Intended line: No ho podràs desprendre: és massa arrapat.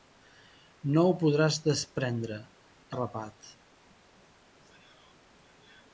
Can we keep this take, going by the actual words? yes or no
no